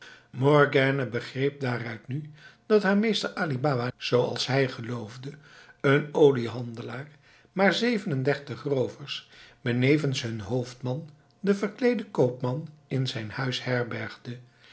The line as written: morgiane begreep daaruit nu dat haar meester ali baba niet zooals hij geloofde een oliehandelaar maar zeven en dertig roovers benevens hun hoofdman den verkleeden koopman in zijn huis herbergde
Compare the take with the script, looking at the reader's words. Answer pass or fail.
fail